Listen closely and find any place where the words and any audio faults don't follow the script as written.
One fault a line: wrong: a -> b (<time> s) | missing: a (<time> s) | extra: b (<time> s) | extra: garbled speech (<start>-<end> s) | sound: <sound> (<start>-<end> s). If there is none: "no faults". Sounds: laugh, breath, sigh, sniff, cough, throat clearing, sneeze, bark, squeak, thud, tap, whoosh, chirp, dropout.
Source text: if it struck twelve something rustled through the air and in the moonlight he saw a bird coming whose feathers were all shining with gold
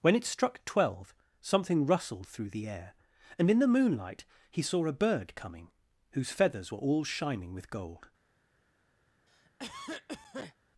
wrong: if -> when (0.0 s)
sound: cough (9.3-10.6 s)